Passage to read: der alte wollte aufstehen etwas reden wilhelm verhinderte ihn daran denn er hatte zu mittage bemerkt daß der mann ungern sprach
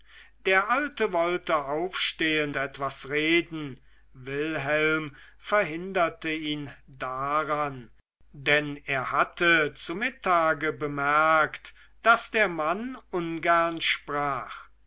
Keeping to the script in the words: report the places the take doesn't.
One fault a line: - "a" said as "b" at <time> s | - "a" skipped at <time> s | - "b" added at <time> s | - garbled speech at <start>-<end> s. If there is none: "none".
none